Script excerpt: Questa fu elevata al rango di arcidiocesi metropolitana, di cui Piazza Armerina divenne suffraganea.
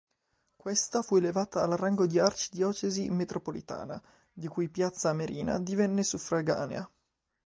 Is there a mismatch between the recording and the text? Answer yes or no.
no